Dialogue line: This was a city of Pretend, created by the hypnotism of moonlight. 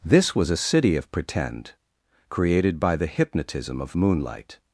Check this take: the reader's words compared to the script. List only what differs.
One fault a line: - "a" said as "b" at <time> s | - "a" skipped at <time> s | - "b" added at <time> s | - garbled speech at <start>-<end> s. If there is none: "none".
none